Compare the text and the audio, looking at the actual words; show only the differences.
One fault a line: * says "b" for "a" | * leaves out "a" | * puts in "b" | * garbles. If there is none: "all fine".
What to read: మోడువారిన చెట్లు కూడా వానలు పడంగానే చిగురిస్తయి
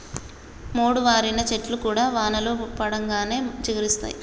all fine